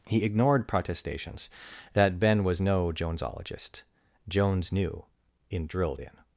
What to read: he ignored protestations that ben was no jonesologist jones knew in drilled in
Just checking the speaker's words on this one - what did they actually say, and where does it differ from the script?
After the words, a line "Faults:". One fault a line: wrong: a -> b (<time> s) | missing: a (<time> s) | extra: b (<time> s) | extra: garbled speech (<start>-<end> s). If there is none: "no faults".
he ignored protestations that ben was no jonesologist jones knew in drilled in
Faults:
no faults